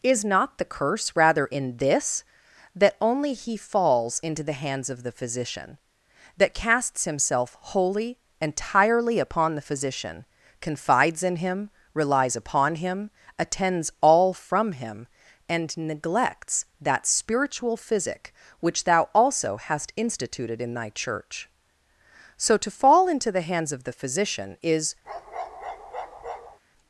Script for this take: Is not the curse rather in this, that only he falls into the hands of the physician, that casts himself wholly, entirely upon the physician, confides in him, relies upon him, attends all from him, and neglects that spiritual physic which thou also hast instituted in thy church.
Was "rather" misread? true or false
false